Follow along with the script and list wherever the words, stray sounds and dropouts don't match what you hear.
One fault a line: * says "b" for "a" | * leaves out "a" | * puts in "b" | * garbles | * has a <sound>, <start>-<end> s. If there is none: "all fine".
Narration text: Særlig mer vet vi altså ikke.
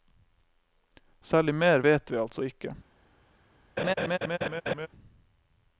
* has a laugh, 3.8-4.9 s